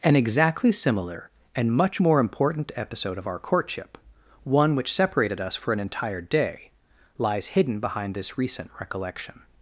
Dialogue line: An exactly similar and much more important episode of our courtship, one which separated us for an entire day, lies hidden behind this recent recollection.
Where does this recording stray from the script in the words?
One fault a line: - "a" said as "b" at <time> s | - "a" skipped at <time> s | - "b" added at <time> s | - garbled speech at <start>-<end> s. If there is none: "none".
none